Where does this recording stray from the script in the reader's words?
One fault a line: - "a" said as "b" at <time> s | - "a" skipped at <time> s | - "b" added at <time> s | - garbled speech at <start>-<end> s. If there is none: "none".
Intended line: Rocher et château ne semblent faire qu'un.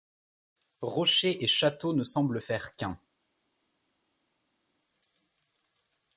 none